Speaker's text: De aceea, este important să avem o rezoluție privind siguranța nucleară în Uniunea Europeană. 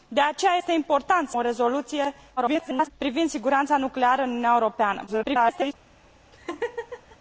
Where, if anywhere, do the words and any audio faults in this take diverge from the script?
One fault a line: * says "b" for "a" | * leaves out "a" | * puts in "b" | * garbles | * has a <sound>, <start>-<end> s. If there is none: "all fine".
* leaves out "avem"
* garbles
* garbles
* has a laugh, 6.3-7.2 s